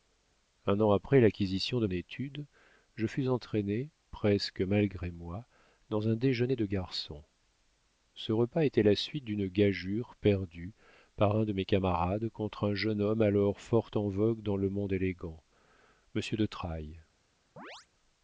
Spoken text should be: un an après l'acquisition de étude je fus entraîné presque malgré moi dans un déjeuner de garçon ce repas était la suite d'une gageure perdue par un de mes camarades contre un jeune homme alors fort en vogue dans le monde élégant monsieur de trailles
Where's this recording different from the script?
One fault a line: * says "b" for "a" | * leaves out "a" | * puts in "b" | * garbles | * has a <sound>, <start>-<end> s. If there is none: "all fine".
* has a chirp, 17.6-17.9 s